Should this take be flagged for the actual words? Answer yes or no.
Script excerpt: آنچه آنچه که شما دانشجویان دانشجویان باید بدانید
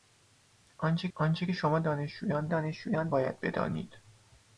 no